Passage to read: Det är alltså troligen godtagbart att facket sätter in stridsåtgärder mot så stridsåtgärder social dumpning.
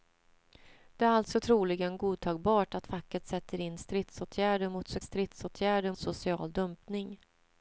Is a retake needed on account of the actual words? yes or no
no